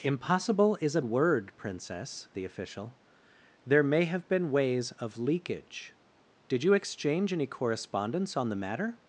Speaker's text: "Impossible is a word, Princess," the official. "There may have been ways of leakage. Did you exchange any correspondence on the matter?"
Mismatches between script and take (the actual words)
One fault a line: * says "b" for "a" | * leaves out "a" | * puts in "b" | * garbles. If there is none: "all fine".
all fine